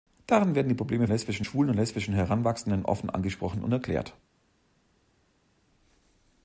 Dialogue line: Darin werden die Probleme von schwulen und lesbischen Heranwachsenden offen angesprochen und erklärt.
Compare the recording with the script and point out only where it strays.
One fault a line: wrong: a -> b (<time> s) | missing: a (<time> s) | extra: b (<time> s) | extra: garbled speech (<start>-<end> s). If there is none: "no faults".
wrong: von -> lesbischen (1.1 s)